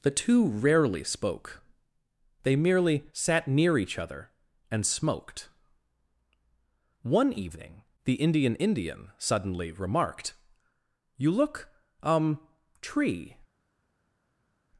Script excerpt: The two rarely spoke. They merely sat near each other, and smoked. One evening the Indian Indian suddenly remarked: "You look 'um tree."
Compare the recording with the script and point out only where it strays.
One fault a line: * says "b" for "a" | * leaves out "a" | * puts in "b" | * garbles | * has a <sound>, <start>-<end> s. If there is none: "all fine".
all fine